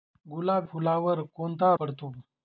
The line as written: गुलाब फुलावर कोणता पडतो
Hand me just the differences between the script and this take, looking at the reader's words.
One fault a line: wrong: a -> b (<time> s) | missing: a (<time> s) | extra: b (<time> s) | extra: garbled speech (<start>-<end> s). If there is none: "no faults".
no faults